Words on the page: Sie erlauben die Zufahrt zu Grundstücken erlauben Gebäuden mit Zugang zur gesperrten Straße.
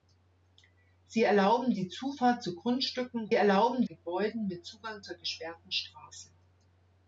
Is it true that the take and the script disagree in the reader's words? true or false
false